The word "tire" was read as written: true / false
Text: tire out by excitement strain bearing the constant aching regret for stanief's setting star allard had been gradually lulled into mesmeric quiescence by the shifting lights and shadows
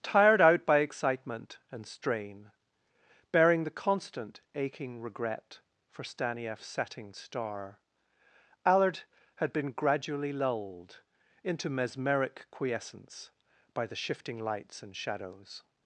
false